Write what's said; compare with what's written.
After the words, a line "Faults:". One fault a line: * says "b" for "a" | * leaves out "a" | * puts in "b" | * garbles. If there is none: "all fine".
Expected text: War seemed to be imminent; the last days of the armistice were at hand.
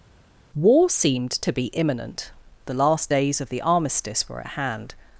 War seemed to be imminent; the last days of the armistice were at hand.
Faults:
all fine